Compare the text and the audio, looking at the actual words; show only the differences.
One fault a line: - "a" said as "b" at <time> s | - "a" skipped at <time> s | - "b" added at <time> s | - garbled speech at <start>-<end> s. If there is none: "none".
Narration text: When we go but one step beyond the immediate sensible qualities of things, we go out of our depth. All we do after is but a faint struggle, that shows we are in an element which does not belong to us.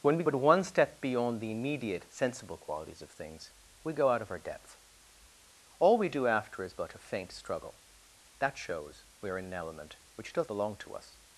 - "go" skipped at 0.2 s
- "not" skipped at 10.5 s